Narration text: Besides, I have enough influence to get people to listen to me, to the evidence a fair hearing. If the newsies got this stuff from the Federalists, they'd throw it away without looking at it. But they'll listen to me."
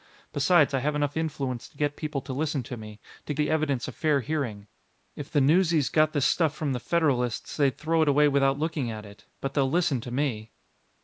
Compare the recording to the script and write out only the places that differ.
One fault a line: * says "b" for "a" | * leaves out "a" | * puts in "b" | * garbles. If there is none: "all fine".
all fine